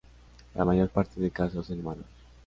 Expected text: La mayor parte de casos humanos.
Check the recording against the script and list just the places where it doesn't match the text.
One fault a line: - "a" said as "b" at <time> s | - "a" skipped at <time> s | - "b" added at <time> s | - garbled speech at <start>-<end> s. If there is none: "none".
- "en" added at 1.7 s